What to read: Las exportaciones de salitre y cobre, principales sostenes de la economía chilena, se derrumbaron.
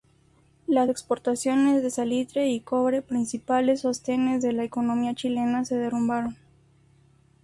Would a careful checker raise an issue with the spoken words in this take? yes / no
no